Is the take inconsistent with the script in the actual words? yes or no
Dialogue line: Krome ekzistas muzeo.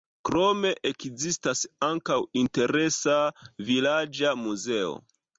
yes